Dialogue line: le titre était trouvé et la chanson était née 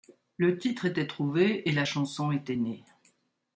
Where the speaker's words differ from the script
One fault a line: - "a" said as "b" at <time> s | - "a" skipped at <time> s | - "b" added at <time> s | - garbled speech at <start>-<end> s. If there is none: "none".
none